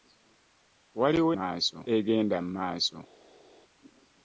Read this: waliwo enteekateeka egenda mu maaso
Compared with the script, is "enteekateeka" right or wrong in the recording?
wrong